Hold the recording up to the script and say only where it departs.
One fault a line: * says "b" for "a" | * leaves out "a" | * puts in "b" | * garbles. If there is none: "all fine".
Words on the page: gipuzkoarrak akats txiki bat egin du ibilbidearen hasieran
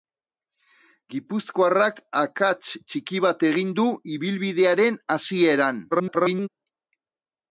* garbles